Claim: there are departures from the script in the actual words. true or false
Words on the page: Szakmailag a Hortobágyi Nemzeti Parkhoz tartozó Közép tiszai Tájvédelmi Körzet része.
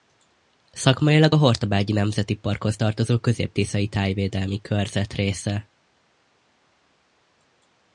false